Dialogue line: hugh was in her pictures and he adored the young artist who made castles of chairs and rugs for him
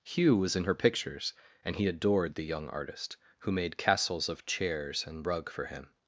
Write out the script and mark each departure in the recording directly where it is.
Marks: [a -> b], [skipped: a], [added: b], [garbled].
hugh was in her pictures and he adored the young artist who made castles of chairs and [rugs -> rug] for him